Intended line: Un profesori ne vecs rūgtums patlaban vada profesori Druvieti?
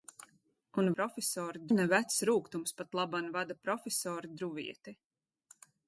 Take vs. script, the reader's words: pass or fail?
pass